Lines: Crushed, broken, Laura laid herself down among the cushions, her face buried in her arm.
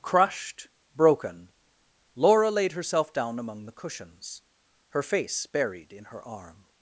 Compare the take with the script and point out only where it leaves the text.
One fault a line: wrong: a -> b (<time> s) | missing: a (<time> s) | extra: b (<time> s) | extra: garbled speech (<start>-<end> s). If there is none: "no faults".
no faults